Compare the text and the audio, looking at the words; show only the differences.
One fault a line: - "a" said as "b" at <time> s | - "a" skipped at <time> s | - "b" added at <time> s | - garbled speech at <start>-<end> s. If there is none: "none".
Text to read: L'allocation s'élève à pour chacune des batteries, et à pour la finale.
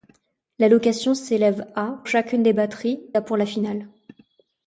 - "pour" skipped at 2.0 s
- "et" skipped at 3.0 s